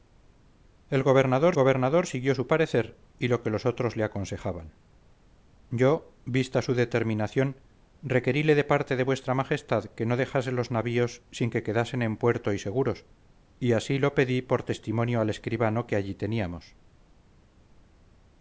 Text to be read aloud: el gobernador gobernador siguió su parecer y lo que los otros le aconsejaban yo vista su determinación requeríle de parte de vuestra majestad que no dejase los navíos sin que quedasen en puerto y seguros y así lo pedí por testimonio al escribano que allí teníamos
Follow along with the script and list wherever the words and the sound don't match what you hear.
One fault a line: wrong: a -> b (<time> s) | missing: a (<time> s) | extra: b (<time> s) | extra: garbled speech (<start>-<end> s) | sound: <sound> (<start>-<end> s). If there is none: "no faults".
no faults